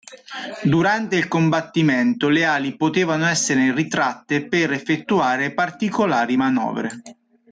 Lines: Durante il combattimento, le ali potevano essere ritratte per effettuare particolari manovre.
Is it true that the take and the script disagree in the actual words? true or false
false